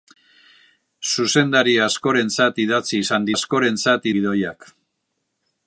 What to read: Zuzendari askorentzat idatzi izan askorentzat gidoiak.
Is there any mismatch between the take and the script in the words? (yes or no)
no